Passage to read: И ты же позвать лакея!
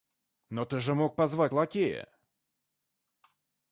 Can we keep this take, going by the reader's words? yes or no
no